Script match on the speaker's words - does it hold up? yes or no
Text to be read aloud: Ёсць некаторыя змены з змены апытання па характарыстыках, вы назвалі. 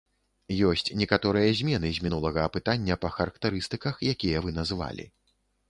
no